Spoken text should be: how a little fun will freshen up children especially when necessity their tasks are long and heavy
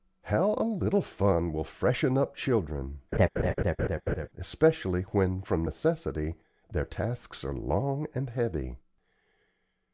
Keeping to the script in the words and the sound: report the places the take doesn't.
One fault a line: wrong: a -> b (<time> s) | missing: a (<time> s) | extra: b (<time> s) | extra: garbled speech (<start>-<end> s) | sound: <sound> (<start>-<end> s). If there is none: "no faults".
sound: laugh (3.1-4.3 s)
extra: from (5.4 s)